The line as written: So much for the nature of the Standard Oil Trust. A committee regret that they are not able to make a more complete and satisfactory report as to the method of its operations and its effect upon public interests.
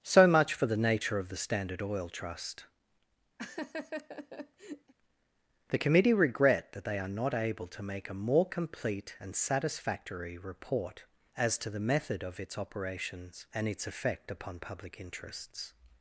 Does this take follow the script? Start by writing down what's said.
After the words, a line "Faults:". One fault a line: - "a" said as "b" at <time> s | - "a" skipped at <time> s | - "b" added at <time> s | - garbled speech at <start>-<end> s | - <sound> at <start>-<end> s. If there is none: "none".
So much for the nature of the Standard Oil Trust. The committee regret that they are not able to make a more complete and satisfactory report as to the method of its operations and its effect upon public interests.
Faults:
- laugh at 3.4-4.9 s
- "A" said as "The" at 5.7 s